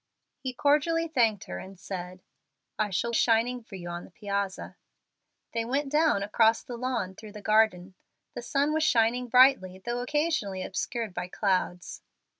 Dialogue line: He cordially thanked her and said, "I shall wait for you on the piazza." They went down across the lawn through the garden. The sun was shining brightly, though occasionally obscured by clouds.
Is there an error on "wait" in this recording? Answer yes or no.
yes